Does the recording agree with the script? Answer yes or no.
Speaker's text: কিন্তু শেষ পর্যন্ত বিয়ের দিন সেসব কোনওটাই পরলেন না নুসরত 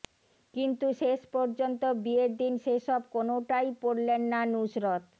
yes